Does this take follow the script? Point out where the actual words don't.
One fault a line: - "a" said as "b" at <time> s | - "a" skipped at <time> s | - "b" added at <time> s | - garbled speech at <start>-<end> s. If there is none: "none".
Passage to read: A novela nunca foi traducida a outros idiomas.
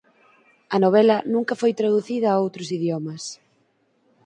none